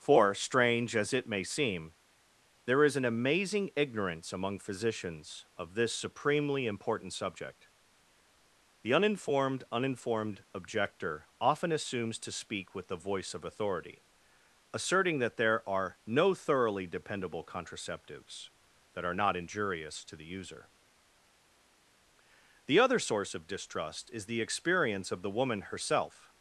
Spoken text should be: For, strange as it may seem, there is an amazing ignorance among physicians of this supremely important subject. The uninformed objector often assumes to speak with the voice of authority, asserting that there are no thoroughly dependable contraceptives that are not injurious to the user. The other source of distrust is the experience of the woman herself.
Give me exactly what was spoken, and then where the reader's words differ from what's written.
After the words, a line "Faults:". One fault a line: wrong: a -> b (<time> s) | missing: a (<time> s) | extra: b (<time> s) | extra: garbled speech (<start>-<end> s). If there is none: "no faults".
For, strange as it may seem, there is an amazing ignorance among physicians of this supremely important subject. The uninformed uninformed objector often assumes to speak with the voice of authority, asserting that there are no thoroughly dependable contraceptives that are not injurious to the user. The other source of distrust is the experience of the woman herself.
Faults:
extra: uninformed (9.7 s)